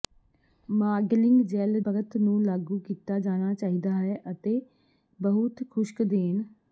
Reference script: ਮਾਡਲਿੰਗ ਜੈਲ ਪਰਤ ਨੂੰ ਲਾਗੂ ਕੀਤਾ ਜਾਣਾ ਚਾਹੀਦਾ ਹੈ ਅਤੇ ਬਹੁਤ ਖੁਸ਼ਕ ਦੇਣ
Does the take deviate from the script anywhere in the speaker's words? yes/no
no